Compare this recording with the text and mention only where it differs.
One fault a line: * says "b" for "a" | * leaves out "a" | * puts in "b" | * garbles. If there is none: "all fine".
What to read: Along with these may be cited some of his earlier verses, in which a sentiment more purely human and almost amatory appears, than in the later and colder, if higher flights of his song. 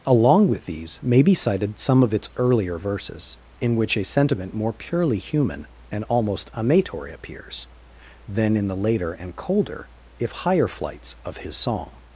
* says "its" for "his"